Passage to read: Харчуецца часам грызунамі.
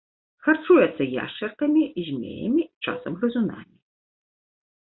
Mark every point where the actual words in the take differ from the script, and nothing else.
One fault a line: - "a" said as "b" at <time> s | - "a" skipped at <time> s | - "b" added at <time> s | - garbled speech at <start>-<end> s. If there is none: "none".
- "яшчаркамі змеямі" added at 1.2 s